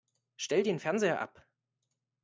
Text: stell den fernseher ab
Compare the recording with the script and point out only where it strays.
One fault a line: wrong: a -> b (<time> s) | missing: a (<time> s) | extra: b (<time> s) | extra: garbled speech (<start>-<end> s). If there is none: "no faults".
no faults